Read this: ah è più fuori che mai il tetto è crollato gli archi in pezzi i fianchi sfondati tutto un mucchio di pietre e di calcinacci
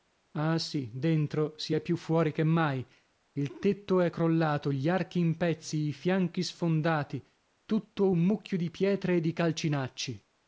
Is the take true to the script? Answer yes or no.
no